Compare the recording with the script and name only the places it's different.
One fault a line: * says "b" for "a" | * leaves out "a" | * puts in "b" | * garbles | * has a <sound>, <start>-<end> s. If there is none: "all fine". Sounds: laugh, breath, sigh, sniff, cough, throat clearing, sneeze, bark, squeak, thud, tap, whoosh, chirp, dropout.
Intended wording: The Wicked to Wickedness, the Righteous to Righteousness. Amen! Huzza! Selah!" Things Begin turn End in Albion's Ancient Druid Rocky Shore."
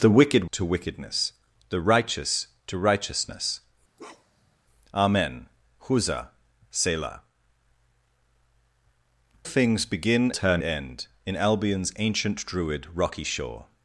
* has a bark, 4.0-4.6 s